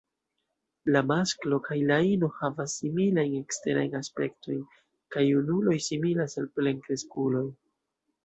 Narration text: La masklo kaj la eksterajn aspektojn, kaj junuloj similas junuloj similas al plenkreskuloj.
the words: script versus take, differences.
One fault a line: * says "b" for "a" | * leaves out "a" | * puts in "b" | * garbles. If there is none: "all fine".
* puts in "ino havas similajn"
* leaves out "junuloj similas"